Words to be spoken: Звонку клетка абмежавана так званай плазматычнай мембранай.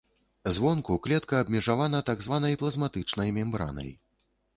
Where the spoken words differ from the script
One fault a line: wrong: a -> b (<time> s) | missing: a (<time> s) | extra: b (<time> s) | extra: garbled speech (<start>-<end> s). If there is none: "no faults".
no faults